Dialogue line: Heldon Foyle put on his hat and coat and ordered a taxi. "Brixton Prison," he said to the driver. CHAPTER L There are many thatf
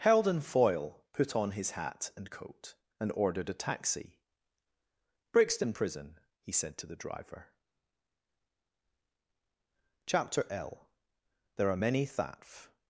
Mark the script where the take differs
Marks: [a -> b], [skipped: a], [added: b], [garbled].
Heldon Foyle put on his hat and coat and ordered a taxi. "Brixton Prison," he said to the driver. CHAPTER L There are many thatf